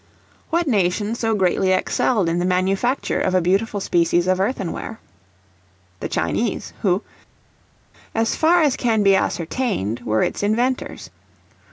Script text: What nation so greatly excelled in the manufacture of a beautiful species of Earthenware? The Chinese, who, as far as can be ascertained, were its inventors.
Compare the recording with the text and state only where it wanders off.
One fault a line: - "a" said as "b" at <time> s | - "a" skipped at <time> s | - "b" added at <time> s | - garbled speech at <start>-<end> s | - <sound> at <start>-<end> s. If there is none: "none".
none